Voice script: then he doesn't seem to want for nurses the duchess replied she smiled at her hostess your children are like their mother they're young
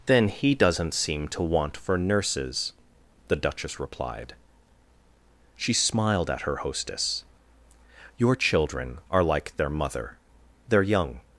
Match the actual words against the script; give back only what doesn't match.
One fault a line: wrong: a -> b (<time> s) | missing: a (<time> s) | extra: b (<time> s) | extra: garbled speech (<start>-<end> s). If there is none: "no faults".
no faults